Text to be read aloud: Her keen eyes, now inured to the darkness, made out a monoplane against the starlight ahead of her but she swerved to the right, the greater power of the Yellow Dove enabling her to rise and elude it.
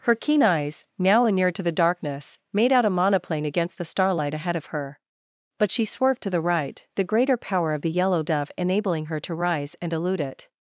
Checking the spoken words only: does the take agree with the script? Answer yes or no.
yes